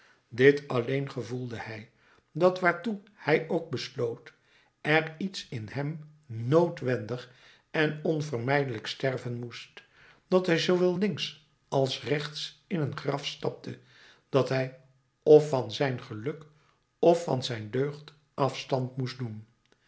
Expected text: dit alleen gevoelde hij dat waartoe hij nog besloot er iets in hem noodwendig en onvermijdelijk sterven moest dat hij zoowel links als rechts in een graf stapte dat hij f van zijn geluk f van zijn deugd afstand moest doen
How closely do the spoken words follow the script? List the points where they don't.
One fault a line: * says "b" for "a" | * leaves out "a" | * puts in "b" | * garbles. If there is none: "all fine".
* says "ook" for "nog"